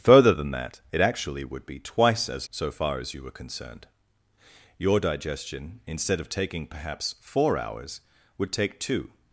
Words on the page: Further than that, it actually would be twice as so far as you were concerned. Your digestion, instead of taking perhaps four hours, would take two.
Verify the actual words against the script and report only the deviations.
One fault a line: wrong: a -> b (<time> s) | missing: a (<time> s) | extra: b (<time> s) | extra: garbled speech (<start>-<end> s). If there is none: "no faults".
no faults